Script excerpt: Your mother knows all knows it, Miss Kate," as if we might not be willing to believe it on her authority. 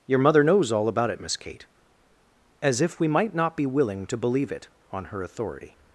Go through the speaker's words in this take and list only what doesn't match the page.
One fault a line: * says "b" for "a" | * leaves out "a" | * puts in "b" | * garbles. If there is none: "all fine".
* says "about" for "knows"